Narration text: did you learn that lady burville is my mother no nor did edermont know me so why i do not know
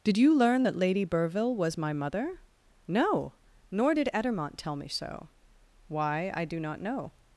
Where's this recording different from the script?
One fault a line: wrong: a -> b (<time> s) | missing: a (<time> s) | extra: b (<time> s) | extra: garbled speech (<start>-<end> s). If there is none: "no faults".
wrong: is -> was (1.5 s)
wrong: know -> tell (4.6 s)